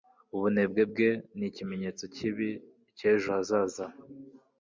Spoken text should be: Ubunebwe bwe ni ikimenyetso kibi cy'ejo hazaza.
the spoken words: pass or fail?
pass